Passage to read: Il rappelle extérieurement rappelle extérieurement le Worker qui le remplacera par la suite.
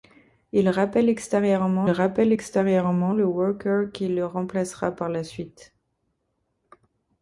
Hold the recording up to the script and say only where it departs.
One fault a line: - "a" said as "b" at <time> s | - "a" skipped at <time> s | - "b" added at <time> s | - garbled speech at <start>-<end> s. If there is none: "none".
none